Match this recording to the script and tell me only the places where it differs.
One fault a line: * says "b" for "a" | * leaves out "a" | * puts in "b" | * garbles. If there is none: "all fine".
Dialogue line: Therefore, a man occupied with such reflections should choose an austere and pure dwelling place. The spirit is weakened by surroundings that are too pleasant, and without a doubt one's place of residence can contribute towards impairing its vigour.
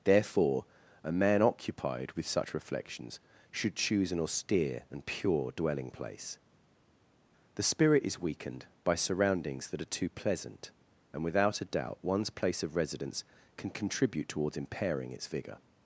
all fine